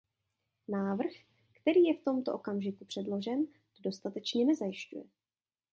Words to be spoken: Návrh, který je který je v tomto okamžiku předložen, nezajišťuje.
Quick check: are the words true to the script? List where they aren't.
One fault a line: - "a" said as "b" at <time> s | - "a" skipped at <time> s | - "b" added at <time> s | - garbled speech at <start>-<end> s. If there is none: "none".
- "který je" skipped at 2.0 s
- "to dostatečně" added at 3.5 s